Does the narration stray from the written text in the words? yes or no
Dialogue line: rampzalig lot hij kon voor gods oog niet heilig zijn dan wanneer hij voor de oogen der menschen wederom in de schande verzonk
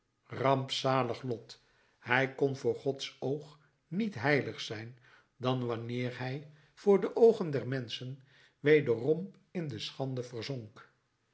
no